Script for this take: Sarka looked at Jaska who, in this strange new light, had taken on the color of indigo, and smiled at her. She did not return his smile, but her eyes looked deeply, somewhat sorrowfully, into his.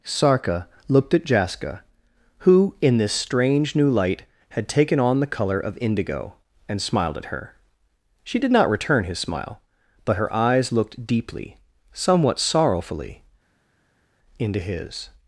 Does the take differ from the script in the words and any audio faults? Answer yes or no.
no